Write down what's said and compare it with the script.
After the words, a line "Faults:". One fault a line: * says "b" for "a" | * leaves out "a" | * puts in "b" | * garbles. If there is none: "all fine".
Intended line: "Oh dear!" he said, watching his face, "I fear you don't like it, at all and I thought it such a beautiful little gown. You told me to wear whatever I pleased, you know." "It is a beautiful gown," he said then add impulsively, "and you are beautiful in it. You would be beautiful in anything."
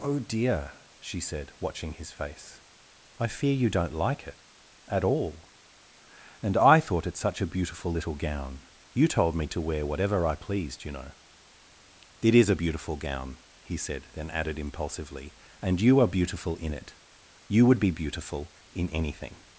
"Oh dear!" she said, watching his face, "I fear you don't like it, at all and I thought it such a beautiful little gown. You told me to wear whatever I pleased, you know." "It is a beautiful gown," he said then added impulsively, "and you are beautiful in it. You would be beautiful in anything."
Faults:
* says "she" for "he"
* says "added" for "add"